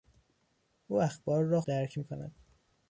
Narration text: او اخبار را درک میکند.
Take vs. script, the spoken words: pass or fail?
pass